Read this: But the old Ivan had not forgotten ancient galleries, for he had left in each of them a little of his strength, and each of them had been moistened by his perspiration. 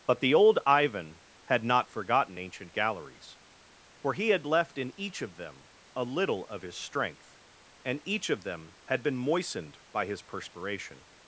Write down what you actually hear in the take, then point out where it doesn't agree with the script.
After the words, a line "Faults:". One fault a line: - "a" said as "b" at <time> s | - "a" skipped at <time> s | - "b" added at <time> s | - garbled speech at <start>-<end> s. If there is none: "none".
But the old Ivan had not forgotten ancient galleries, for he had left in each of them a little of his strength, and each of them had been moistened by his perspiration.
Faults:
none